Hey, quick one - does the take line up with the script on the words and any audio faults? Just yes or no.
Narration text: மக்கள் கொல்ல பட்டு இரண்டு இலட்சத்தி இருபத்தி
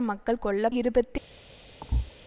no